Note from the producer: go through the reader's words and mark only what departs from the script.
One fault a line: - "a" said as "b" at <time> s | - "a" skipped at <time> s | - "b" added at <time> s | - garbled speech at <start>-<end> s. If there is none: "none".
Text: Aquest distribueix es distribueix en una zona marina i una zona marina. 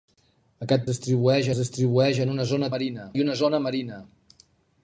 none